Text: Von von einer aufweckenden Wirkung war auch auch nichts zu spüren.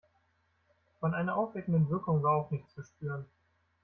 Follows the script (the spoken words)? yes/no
no